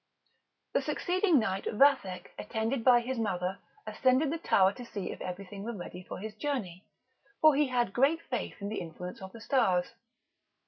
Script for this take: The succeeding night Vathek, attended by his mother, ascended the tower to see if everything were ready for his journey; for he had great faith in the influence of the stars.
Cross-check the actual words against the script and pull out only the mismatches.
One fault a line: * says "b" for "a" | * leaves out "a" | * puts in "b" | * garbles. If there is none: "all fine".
all fine